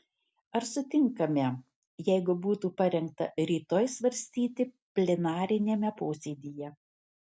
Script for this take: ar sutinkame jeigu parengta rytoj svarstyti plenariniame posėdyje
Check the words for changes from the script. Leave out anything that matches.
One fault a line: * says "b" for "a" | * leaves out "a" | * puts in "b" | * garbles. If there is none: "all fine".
* puts in "būtų"